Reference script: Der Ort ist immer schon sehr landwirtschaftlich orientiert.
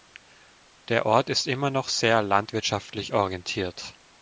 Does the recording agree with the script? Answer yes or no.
no